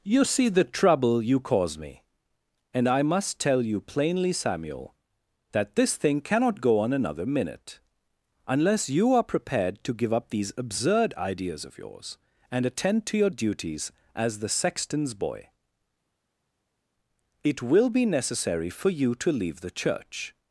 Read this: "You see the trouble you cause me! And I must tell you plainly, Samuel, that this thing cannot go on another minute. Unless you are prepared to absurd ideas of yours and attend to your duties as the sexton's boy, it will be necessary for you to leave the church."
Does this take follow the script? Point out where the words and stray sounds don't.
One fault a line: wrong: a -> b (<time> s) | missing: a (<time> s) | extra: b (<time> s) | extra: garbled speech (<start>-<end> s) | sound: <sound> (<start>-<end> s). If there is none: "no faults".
extra: give up these (9.9 s)